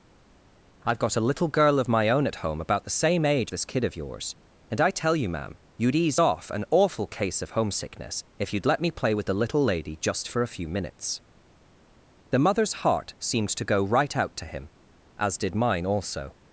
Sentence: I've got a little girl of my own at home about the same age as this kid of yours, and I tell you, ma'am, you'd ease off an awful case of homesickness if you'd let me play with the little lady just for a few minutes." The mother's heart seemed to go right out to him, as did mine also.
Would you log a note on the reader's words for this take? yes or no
yes